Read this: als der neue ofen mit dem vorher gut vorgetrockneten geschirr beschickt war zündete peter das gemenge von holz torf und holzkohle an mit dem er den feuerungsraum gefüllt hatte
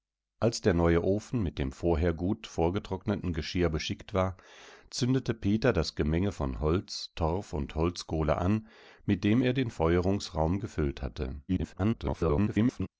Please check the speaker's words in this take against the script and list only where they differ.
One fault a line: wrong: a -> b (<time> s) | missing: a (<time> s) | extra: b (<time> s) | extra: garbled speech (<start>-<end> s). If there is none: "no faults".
extra: garbled speech (11.5-12.9 s)